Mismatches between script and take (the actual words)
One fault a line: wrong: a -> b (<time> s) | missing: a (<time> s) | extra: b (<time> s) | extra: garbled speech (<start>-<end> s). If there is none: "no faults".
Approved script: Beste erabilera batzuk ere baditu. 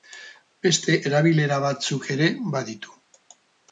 no faults